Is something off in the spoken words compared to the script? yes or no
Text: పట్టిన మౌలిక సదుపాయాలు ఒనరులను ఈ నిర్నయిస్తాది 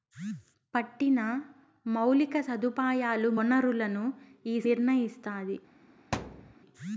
no